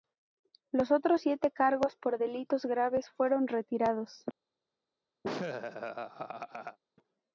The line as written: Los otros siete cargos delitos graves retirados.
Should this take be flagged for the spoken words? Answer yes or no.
yes